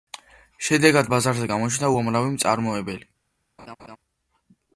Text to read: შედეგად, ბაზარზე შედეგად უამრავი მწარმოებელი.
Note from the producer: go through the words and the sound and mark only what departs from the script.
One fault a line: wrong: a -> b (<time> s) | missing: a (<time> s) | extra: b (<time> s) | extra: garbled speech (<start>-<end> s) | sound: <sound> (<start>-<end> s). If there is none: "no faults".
wrong: შედეგად -> გამოჩნდა (1.5 s)
sound: laugh (3.6-4.0 s)